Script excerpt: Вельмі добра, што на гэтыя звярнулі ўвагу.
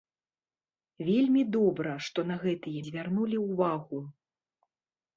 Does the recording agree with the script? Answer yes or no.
yes